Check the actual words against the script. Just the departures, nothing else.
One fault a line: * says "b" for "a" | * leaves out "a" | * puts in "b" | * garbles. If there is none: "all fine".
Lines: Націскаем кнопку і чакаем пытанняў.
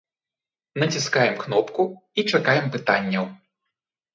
all fine